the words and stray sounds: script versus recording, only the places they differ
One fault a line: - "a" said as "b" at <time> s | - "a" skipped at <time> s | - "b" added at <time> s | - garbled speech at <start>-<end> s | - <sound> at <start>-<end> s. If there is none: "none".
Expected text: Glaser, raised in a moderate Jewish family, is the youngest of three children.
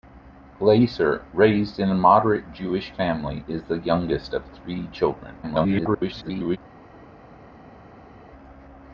- garbled speech at 5.4-6.6 s